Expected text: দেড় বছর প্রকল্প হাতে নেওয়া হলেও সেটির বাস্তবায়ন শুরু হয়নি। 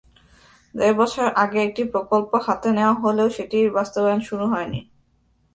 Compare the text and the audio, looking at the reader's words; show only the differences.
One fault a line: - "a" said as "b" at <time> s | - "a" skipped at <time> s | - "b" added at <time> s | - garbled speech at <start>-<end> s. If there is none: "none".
- "আগে একটি" added at 1.4 s